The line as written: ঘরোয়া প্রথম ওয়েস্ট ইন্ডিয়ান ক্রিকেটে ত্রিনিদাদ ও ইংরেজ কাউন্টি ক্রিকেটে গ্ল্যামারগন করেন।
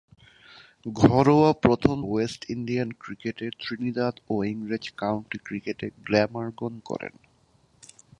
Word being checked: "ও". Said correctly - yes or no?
yes